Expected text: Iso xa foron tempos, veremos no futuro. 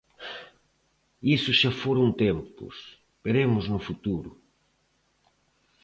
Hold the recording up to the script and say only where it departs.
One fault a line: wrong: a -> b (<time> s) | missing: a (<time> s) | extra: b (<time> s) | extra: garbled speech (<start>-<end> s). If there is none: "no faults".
no faults